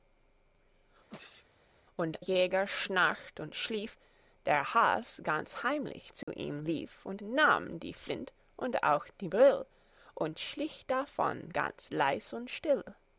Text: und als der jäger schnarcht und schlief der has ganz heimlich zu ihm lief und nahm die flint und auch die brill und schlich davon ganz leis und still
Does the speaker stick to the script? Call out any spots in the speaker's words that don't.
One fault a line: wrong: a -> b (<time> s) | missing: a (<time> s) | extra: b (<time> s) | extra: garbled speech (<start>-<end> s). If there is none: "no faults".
missing: als der (2.2 s)